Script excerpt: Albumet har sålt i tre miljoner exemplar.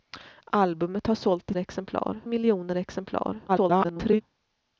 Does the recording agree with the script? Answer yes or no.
no